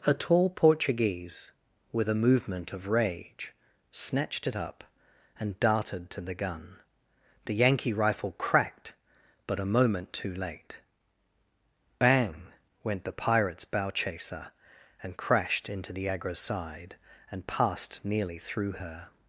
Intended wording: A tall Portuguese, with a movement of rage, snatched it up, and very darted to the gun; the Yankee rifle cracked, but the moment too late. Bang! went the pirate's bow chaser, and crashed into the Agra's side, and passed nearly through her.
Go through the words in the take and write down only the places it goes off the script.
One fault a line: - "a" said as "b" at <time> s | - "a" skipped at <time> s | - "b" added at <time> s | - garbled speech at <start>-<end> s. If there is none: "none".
- "very" skipped at 5.6 s
- "the" said as "a" at 9.6 s